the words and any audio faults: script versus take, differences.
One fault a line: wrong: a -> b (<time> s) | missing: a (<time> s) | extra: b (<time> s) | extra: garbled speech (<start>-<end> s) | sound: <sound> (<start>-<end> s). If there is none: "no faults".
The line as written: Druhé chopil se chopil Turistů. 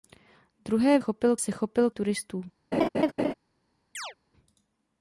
sound: laugh (2.7-3.3 s)
sound: chirp (3.9-4.1 s)